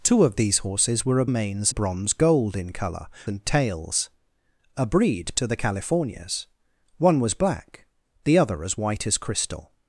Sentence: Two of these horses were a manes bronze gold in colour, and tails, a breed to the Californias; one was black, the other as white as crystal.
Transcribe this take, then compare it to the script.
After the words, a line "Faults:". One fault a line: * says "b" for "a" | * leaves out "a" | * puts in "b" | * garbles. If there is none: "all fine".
Two of these horses were a manes bronze gold in colour, and tails, a breed to the Californias; one was black, the other as white as crystal.
Faults:
all fine